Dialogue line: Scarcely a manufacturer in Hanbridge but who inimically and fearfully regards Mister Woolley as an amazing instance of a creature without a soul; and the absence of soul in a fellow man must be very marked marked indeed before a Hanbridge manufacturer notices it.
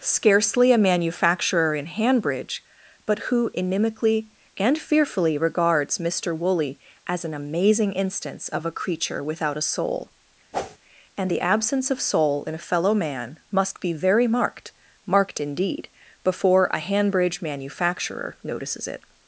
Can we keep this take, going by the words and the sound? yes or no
no